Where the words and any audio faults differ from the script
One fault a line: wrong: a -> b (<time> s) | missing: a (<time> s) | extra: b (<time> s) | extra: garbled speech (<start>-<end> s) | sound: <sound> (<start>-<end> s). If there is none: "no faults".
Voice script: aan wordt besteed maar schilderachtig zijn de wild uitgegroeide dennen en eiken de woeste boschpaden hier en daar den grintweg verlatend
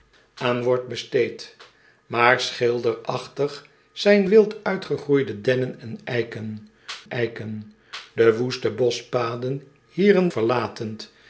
missing: de (4.2 s)
extra: eiken (7.1 s)
missing: daar den grintweg (10.3 s)